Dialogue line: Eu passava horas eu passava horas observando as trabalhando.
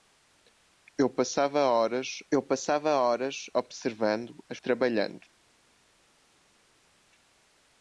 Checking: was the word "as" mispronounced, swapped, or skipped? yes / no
no